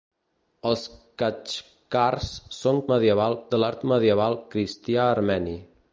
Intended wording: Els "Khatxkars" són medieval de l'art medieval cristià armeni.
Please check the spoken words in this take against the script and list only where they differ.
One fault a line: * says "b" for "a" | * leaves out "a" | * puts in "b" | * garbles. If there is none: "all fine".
all fine